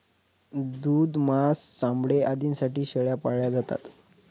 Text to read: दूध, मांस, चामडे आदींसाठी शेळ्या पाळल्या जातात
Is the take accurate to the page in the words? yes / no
yes